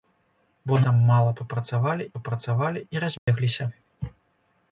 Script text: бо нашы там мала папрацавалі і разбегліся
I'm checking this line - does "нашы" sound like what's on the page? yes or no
no